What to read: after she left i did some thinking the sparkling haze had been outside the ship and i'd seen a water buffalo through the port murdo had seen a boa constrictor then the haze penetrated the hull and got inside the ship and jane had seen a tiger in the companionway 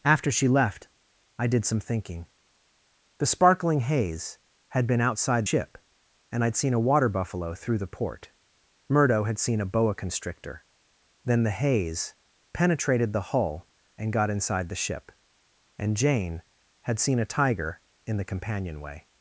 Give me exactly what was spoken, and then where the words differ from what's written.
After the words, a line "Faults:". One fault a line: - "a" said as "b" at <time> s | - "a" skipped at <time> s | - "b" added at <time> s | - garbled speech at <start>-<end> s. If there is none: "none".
after she left i did some thinking the sparkling haze had been outside ship and i'd seen a water buffalo through the port murdo had seen a boa constrictor then the haze penetrated the hull and got inside the ship and jane had seen a tiger in the companionway
Faults:
- "the" skipped at 5.5 s